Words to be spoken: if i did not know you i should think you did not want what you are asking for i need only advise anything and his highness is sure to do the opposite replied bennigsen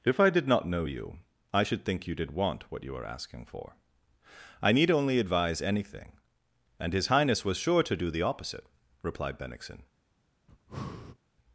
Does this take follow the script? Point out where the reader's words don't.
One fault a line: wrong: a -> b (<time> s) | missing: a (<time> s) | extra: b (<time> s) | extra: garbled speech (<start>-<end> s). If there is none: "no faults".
missing: not (2.3 s)
wrong: is -> was (7.4 s)